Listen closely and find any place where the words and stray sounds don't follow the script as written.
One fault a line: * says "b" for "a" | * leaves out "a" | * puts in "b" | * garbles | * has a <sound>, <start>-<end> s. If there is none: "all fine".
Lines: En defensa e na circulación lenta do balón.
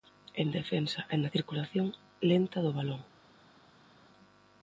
all fine